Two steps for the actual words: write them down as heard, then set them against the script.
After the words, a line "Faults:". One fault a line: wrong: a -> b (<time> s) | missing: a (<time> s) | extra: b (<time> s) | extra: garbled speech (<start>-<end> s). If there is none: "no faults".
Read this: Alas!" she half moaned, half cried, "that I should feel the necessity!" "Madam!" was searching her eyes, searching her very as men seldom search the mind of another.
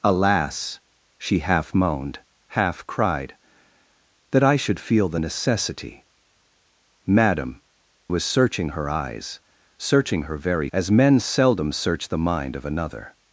Alas!" she half moaned, half cried, "that I should feel the necessity!" "Madam!" was searching her eyes, searching her very as men seldom search the mind of another.
Faults:
no faults